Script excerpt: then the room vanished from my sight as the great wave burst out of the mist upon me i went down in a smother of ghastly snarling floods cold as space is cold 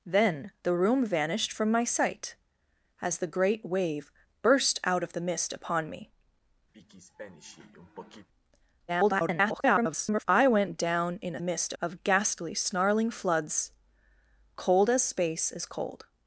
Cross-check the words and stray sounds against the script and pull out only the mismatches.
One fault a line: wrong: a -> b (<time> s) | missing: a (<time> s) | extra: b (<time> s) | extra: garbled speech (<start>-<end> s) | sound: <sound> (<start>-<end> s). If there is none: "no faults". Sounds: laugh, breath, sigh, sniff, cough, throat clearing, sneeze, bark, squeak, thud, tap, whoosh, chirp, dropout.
sound: throat clearing (6.7-8.3 s)
extra: garbled speech (8.9-10.2 s)
wrong: smother -> mist (11.4 s)